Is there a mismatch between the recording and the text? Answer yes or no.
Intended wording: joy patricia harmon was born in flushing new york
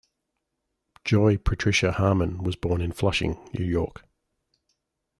no